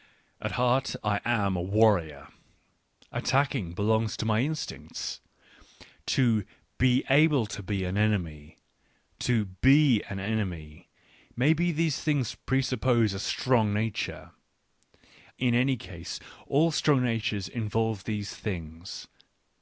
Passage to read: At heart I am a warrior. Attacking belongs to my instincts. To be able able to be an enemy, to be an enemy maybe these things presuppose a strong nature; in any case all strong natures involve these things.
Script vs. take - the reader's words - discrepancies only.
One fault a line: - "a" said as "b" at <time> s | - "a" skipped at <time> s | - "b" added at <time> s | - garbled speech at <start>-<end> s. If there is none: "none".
- "able" skipped at 7.5 s